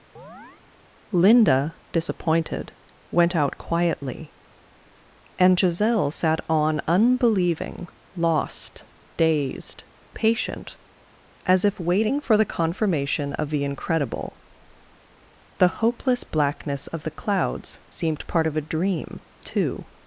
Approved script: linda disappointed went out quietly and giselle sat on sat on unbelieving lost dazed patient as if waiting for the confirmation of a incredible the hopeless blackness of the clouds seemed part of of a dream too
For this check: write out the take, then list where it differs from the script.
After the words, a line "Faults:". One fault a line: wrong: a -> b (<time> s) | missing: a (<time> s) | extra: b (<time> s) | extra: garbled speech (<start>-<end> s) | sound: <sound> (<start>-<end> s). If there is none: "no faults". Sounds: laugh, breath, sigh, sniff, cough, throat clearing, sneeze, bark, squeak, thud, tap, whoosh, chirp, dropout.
linda disappointed went out quietly and giselle sat on unbelieving lost dazed patient as if waiting for the confirmation of the incredible the hopeless blackness of the clouds seemed part of a dream too
Faults:
sound: chirp (0.2-0.6 s)
missing: sat on (6.8 s)
wrong: a -> the (13.5 s)
missing: of (18.6 s)